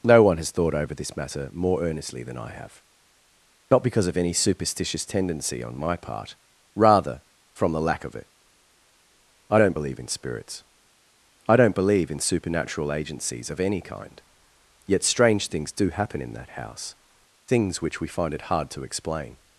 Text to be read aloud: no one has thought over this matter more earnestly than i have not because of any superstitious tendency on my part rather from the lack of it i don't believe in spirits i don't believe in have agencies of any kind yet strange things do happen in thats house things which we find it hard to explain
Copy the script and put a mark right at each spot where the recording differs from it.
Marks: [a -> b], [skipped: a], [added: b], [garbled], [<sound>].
no one has thought over this matter more earnestly than i have not because of any superstitious tendency on my part rather from the lack of it i don't believe in spirits i don't believe in [have -> supernatural] agencies of any kind yet strange things do happen in [thats -> that] house things which we find it hard to explain